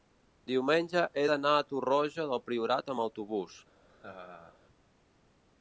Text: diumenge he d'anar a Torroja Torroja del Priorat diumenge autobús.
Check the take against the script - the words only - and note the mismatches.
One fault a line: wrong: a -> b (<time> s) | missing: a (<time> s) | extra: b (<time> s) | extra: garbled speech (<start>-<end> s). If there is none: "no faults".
missing: Torroja (2.3 s)
wrong: diumenge -> amb (2.9 s)